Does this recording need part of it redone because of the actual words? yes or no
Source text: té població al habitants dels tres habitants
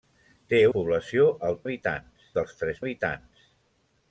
no